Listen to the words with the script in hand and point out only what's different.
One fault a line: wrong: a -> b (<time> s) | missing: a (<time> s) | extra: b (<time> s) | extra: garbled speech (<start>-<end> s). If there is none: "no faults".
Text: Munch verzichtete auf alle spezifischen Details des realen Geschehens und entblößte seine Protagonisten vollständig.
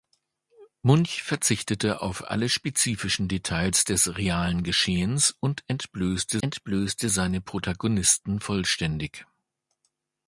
extra: entblößte (6.4 s)